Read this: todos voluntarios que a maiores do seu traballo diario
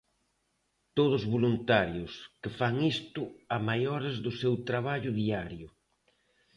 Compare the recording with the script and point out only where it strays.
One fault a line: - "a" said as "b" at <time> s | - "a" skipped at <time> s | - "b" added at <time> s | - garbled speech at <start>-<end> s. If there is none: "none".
- "fan isto" added at 2.6 s